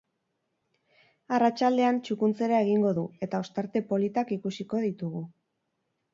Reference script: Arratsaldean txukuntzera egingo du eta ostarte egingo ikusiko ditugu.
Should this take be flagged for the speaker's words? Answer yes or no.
yes